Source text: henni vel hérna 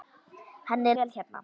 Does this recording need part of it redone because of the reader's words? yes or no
no